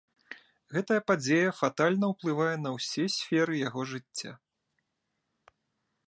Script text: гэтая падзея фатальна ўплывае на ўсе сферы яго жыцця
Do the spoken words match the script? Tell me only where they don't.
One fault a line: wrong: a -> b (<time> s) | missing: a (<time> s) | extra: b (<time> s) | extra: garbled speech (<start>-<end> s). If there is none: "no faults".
no faults